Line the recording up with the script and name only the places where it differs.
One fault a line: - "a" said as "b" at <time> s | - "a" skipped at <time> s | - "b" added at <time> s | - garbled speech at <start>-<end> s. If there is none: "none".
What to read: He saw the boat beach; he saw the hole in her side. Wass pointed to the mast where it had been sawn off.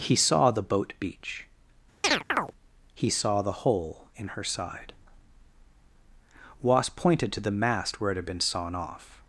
none